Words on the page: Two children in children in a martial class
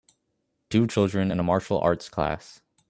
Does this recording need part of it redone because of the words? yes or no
yes